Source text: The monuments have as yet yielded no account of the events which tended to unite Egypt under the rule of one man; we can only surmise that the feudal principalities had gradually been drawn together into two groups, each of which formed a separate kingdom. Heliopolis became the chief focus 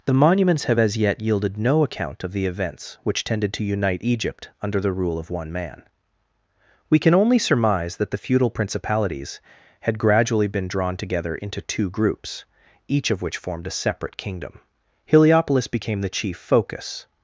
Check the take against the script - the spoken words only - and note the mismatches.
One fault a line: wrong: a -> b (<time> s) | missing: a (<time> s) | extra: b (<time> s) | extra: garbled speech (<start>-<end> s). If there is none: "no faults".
no faults